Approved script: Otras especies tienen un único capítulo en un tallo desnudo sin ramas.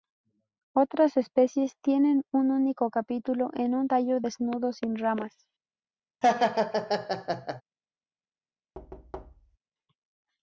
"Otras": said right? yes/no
yes